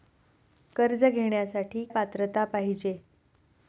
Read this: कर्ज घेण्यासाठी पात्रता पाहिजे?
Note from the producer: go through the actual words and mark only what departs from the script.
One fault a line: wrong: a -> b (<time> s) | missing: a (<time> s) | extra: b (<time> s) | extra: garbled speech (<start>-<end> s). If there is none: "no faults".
no faults